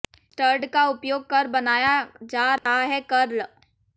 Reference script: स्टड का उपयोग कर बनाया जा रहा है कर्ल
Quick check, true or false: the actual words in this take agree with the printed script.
true